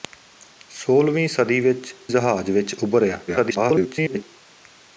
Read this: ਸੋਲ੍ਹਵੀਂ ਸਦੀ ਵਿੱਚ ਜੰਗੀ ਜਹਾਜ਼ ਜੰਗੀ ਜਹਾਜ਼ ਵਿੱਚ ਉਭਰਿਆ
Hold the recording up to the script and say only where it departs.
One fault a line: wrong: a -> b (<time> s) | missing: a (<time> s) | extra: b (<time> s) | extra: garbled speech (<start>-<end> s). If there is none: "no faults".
missing: ਜੰਗੀ ਜਹਾਜ਼ ਜੰਗੀ (1.9 s)
extra: garbled speech (3.3-4.2 s)